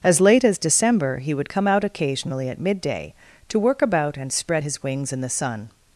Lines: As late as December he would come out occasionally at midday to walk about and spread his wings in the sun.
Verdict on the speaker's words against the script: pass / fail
fail